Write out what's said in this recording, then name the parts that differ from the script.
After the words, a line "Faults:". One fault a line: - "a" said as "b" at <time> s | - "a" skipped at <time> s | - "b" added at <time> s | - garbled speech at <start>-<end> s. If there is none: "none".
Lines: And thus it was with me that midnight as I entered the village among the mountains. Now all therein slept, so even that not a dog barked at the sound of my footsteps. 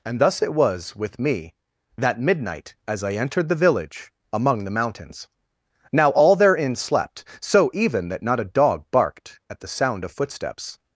And thus it was with me that midnight as I entered the village among the mountains. Now all therein slept, so even that not a dog barked at the sound of footsteps.
Faults:
- "my" skipped at 10.1 s